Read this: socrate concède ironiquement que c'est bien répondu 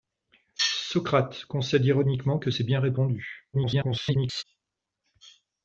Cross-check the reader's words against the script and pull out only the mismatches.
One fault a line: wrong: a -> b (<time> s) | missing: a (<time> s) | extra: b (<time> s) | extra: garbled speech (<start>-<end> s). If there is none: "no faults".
extra: garbled speech (3.5-4.4 s)